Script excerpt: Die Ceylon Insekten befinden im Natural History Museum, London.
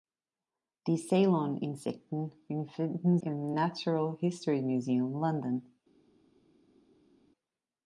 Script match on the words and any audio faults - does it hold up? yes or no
yes